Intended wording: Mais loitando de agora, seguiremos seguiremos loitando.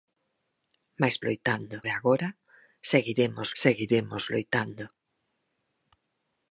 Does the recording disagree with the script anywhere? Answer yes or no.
no